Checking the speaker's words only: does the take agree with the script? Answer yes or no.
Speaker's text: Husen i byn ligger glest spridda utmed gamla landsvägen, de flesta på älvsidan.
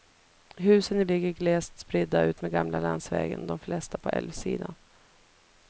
no